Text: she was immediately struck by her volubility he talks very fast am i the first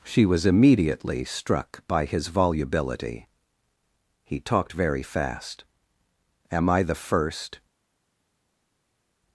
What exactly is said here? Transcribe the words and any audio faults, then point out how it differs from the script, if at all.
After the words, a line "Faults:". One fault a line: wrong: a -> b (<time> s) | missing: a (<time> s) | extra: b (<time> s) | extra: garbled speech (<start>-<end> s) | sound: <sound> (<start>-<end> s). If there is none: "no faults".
she was immediately struck by his volubility he talked very fast am i the first
Faults:
wrong: her -> his (2.0 s)
wrong: talks -> talked (4.4 s)